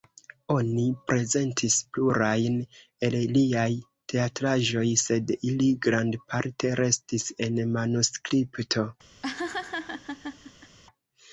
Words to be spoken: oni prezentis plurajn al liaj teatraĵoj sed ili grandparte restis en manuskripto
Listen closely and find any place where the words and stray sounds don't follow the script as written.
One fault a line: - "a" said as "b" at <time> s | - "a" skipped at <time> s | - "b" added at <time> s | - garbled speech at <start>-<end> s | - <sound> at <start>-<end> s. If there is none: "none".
- "al" said as "el" at 3.1 s
- laugh at 9.2-10.8 s